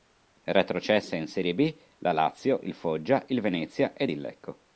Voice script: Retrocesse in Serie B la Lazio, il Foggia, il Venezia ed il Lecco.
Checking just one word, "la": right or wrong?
right